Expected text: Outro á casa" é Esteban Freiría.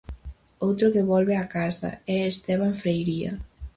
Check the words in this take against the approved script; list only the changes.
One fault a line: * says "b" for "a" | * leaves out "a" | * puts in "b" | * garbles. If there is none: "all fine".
* puts in "que volve"